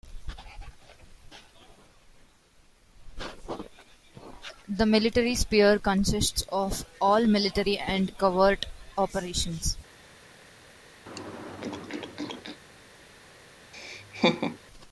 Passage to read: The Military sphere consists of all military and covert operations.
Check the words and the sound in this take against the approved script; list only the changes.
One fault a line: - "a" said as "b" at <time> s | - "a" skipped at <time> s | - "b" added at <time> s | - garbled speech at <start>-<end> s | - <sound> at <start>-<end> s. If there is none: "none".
- throat clearing at 11.1-12.6 s
- laugh at 13.7-14.6 s